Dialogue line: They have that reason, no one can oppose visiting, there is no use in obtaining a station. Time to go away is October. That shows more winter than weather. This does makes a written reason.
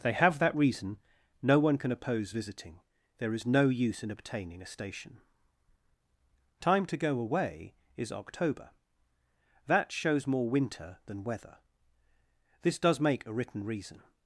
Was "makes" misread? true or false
true